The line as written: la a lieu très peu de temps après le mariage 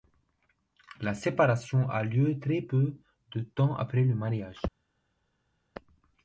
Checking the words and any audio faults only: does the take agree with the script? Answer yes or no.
no